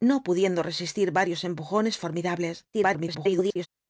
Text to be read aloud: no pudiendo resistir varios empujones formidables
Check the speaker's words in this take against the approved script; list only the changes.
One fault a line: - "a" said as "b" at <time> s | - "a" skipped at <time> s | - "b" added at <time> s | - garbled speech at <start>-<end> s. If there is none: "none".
- garbled speech at 2.7-3.7 s